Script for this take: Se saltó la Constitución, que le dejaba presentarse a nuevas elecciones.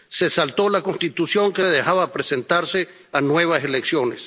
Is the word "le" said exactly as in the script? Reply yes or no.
yes